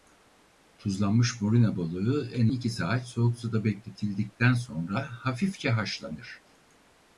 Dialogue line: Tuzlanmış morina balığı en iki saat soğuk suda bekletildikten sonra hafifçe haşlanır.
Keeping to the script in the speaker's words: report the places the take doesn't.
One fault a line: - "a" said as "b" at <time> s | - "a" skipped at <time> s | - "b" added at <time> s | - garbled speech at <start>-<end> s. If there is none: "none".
none